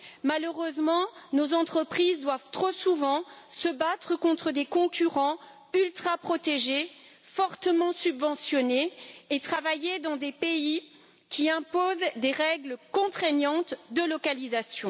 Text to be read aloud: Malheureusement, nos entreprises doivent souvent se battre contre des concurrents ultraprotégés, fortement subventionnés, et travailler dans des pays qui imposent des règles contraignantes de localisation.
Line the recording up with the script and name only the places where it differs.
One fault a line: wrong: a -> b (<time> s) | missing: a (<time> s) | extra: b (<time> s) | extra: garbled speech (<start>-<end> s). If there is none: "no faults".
extra: trop (2.5 s)